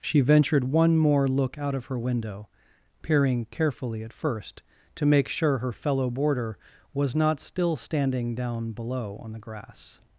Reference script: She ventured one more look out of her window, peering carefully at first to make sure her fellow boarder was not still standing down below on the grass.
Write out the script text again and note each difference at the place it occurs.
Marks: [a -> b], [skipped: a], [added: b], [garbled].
She ventured one more look out of her window, peering carefully at first to make sure her fellow boarder was not still standing down below on the grass.